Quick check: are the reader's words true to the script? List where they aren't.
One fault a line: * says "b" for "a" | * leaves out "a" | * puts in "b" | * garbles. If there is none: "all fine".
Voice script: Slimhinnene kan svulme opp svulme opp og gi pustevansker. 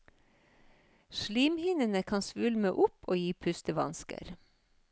* leaves out "svulme opp"